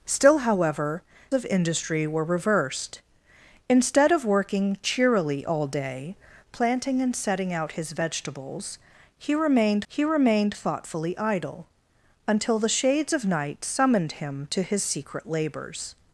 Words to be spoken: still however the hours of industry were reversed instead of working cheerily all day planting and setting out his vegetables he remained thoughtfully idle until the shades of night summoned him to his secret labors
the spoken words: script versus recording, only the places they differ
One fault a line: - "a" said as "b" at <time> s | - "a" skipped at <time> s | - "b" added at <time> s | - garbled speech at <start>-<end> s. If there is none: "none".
- "the hours" skipped at 1.0 s
- "he remained" added at 9.9 s